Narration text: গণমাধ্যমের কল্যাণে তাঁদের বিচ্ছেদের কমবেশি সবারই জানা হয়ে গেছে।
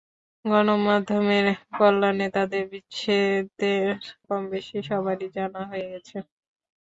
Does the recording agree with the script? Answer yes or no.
yes